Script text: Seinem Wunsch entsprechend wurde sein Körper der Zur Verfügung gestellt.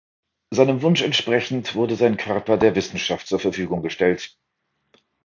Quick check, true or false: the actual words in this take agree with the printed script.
false